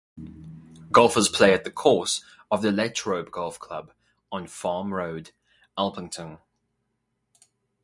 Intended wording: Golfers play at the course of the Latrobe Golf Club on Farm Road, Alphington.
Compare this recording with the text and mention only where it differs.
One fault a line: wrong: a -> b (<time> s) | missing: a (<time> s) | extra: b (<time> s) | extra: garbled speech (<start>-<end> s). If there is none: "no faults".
no faults